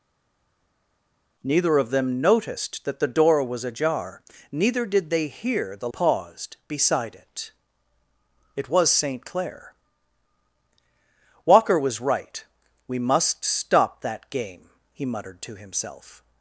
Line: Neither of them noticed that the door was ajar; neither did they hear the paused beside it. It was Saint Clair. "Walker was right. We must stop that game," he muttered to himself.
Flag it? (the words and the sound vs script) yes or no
no